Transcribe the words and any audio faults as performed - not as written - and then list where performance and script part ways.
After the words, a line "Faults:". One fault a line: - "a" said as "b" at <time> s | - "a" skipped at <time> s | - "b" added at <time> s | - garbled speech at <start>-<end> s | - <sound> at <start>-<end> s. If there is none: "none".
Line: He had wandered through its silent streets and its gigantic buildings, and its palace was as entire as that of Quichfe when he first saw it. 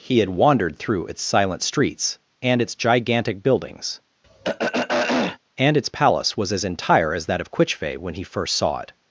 He had wandered through its silent streets and its gigantic buildings, and its palace was as entire as that of Quichfe when he first saw it.
Faults:
- throat clearing at 4.2-5.4 s